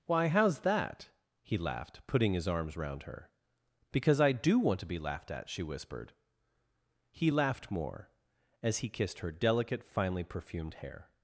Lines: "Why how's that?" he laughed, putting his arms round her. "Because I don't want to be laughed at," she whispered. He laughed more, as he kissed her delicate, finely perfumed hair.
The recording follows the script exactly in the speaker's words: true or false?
false